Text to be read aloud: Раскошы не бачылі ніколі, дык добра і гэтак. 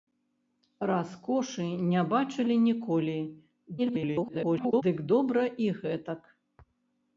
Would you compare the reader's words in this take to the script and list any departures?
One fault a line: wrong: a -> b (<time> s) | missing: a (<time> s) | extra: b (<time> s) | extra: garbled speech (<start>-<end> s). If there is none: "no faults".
extra: garbled speech (3.8-4.8 s)